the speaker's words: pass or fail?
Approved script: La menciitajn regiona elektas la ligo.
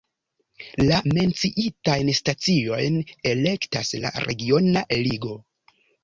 fail